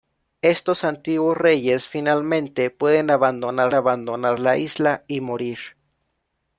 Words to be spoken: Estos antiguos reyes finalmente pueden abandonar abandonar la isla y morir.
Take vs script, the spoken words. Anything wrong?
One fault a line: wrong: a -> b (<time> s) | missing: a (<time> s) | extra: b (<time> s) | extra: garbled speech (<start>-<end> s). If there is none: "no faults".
no faults